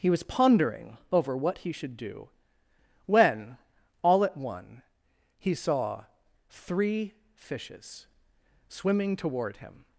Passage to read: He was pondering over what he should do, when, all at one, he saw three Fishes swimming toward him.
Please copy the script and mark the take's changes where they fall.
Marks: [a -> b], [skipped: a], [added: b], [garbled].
He was pondering over what he should do, when, all at one, he saw three Fishes swimming toward him.